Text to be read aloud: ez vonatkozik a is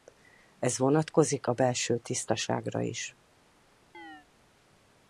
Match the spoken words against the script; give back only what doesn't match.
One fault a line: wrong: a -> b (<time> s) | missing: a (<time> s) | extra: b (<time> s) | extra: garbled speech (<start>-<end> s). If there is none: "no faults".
extra: belső tisztaságra (1.5 s)